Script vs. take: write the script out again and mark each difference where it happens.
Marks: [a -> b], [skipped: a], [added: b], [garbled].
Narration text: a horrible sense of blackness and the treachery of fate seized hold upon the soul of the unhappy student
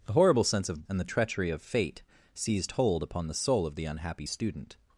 a horrible sense of [skipped: blackness] and the treachery of fate seized hold upon the soul of the unhappy student